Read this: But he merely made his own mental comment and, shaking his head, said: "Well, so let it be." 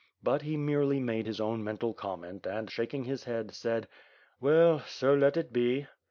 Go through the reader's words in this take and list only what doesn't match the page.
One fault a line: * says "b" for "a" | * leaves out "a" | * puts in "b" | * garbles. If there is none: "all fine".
all fine